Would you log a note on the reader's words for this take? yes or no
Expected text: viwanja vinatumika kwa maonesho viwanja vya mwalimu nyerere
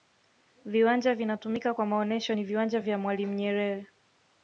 yes